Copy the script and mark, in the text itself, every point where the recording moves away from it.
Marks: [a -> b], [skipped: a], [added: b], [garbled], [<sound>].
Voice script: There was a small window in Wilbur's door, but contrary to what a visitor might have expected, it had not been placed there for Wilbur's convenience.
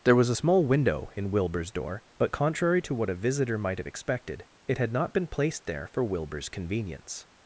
There was a small window in Wilbur's door, but contrary to what a visitor might have expected, it had not been placed there for Wilbur's convenience.